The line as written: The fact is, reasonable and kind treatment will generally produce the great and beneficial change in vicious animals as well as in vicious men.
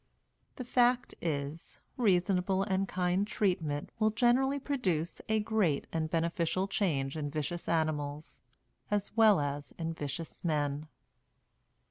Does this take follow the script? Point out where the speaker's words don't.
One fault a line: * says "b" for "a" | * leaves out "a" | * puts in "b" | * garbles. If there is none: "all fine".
* says "a" for "the"